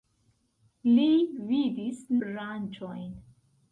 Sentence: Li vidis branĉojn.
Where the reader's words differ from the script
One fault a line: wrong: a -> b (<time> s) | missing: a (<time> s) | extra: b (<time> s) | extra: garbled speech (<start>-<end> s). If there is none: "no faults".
no faults